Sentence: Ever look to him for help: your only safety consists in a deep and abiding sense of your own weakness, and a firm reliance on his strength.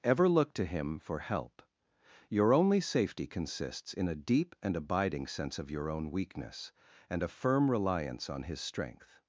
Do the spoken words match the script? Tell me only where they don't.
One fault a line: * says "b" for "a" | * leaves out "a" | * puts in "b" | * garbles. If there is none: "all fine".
all fine